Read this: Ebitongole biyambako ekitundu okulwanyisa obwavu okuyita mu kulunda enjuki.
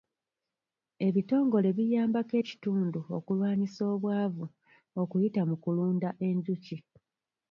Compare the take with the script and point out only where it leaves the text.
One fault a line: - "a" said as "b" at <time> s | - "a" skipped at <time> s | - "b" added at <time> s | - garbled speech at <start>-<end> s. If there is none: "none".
none